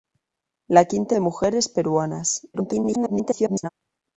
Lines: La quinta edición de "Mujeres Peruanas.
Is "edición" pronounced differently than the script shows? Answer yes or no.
yes